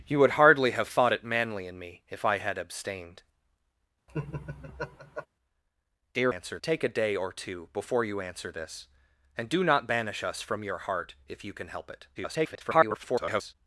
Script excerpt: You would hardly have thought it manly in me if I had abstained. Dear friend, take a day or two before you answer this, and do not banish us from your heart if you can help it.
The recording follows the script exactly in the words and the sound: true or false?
false